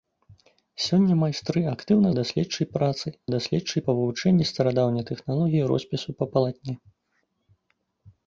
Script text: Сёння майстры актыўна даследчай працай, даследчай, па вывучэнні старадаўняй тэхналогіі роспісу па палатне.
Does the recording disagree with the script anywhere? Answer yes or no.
no